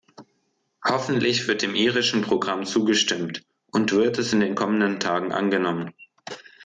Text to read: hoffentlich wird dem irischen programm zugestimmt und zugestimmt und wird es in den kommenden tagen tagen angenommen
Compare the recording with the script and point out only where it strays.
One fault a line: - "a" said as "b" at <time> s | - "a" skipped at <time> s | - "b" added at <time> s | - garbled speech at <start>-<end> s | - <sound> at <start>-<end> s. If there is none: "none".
- "zugestimmt und" skipped at 3.9 s
- "tagen" skipped at 5.3 s